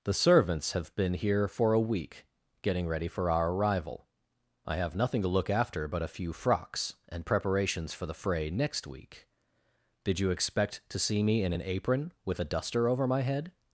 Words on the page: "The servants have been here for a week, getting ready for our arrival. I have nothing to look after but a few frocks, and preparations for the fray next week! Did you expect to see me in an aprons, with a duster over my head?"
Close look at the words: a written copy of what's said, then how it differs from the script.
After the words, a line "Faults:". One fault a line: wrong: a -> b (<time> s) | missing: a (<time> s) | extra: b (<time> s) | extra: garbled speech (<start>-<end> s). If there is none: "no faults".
"The servants have been here for a week, getting ready for our arrival. I have nothing to look after but a few frocks, and preparations for the fray next week! Did you expect to see me in an apron, with a duster over my head?"
Faults:
wrong: aprons -> apron (11.6 s)